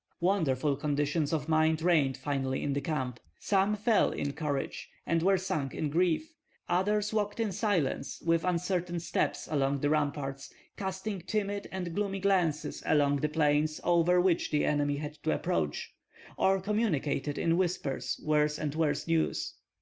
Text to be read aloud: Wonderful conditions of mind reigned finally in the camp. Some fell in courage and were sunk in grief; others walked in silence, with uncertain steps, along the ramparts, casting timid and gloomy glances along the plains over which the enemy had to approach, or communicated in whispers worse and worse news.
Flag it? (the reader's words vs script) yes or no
no